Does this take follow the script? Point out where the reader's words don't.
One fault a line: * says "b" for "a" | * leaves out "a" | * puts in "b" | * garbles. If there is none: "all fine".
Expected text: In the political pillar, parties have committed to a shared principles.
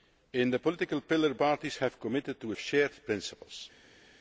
all fine